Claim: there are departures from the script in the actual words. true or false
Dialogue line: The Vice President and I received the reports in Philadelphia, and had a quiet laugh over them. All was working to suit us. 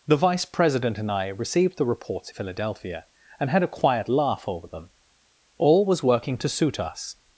true